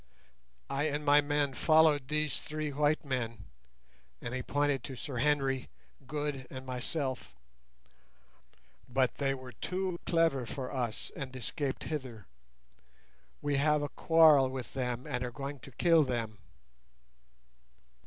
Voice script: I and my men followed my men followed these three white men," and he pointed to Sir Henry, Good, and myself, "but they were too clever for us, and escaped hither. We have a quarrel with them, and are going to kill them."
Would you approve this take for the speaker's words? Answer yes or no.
no